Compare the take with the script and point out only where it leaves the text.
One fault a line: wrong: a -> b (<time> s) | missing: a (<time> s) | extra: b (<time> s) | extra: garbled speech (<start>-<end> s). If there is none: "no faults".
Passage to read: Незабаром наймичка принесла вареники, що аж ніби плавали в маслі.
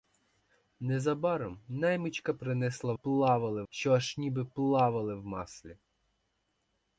wrong: вареники -> плавали (2.9 s)